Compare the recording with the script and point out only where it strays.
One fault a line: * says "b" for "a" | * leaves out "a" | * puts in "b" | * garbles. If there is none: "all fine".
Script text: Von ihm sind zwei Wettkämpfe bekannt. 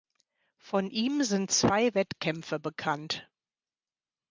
all fine